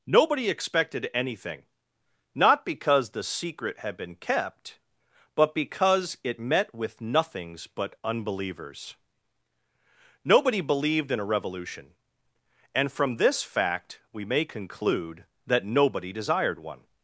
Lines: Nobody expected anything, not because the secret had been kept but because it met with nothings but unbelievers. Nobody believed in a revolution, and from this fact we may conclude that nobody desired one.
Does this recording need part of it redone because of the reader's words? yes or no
no